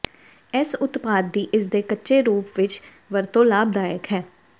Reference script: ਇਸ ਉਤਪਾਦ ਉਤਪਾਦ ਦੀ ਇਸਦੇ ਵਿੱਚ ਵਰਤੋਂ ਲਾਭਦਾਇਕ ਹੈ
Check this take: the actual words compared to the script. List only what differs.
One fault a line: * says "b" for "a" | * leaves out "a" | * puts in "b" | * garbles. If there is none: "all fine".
* leaves out "ਉਤਪਾਦ"
* puts in "ਕੱਚੇ ਰੂਪ"